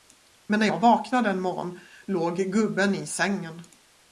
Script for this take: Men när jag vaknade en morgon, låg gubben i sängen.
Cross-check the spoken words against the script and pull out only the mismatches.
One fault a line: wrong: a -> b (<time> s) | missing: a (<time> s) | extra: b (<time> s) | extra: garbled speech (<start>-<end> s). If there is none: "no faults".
no faults